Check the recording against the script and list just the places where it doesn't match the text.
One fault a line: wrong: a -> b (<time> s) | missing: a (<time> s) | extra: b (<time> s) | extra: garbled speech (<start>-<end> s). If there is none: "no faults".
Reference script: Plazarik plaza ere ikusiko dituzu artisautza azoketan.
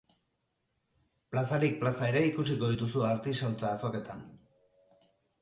no faults